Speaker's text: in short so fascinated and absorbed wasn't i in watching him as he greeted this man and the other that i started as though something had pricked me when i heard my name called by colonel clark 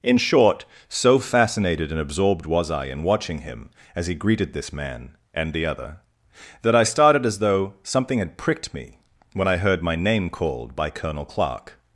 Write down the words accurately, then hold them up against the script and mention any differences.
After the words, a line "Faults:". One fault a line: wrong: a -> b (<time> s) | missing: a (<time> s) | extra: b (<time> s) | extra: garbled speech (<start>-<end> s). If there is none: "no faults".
in short so fascinated and absorbed was i in watching him as he greeted this man and the other that i started as though something had pricked me when i heard my name called by colonel clark
Faults:
wrong: wasn't -> was (2.5 s)